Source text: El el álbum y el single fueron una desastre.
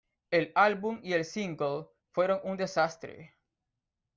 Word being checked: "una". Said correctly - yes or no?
no